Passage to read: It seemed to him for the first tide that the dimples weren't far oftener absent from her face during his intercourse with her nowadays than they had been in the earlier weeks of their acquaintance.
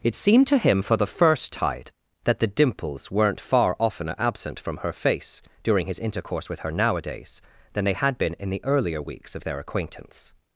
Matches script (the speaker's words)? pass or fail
pass